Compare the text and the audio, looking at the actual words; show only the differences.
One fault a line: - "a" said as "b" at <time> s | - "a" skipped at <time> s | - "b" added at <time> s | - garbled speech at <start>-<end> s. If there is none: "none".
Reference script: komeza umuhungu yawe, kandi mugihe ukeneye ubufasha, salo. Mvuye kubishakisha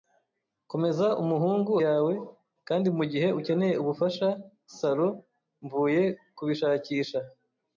none